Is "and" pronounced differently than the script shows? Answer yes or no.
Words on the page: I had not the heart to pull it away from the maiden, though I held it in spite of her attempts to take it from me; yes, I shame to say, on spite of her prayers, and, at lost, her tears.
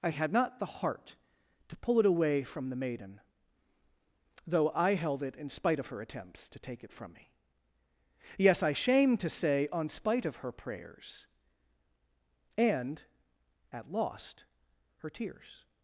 no